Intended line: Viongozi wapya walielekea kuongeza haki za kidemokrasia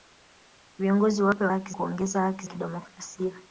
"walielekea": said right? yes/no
no